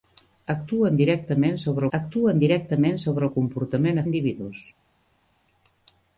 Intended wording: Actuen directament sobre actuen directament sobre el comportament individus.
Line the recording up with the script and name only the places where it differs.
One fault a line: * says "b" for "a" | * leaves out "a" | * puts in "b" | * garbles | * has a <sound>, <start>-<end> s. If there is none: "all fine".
all fine